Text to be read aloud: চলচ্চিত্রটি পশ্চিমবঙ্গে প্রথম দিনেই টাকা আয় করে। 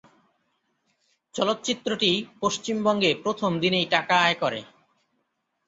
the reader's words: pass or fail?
pass